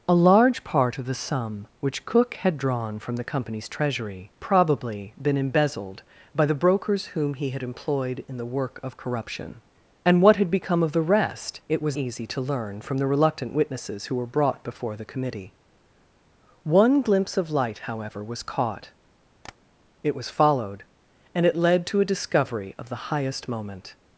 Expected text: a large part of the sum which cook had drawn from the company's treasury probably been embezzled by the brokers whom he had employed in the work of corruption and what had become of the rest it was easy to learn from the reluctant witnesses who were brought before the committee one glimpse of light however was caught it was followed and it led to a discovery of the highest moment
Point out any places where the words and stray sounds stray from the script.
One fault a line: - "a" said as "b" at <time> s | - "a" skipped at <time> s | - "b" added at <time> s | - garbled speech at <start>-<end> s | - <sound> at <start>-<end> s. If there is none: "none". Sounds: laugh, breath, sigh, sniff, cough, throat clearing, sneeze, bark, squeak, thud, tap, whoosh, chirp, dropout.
- tap at 19.4-19.6 s